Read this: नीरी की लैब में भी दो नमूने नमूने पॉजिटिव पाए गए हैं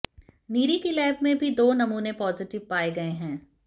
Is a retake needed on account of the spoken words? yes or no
yes